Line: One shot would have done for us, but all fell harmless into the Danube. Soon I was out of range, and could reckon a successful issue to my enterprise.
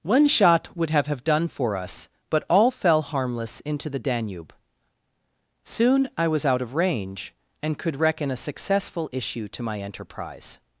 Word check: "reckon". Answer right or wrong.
right